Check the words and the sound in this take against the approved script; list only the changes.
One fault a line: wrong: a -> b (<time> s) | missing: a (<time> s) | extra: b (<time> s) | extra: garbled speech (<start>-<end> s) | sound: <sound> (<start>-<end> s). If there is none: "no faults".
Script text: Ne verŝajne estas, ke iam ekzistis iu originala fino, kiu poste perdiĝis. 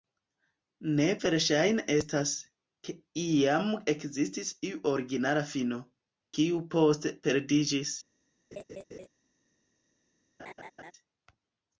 sound: laugh (8.5-9.1 s)
sound: laugh (10.4-10.9 s)